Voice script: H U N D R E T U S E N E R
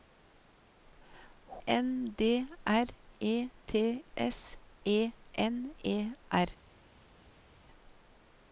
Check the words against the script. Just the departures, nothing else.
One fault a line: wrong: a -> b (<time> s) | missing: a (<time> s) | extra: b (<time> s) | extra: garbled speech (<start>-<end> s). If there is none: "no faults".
missing: U (1.6 s)
missing: U (4.0 s)